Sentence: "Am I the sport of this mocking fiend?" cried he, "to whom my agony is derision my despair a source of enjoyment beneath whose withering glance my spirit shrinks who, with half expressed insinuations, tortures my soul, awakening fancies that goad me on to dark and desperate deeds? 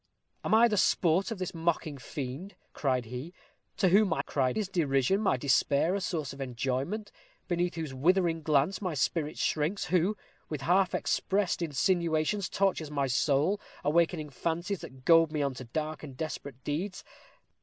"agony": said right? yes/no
no